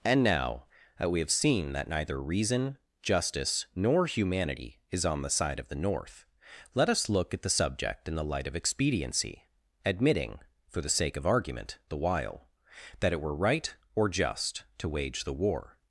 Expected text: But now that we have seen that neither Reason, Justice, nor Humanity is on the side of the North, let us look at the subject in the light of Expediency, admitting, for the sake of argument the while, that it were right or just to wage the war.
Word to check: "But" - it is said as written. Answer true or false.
false